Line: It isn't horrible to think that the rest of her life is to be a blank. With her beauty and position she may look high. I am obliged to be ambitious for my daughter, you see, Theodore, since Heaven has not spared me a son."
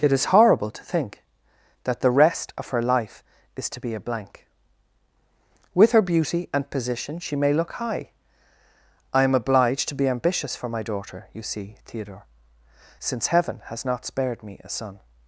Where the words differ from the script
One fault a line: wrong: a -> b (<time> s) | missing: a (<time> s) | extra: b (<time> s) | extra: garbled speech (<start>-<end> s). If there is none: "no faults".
wrong: isn't -> is (0.1 s)